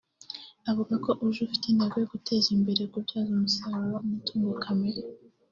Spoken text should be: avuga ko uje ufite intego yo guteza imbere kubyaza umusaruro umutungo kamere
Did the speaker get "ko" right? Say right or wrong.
right